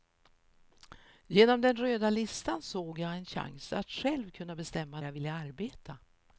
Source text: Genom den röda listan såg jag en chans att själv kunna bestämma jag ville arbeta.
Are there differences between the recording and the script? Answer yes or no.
no